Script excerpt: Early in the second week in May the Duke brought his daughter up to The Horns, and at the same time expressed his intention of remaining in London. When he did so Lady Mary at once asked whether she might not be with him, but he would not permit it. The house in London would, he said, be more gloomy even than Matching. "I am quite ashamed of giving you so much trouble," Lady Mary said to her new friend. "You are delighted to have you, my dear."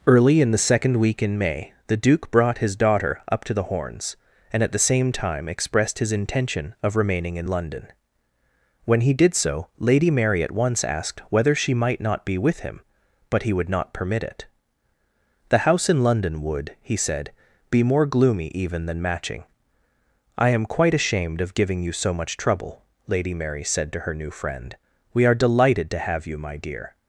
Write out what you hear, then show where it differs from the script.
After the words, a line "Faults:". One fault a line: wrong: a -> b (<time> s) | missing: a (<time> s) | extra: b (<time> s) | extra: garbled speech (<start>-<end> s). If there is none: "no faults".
Early in the second week in May the Duke brought his daughter up to The Horns, and at the same time expressed his intention of remaining in London. When he did so Lady Mary at once asked whether she might not be with him, but he would not permit it. The house in London would, he said, be more gloomy even than Matching. "I am quite ashamed of giving you so much trouble," Lady Mary said to her new friend. "We are delighted to have you, my dear."
Faults:
wrong: You -> We (25.1 s)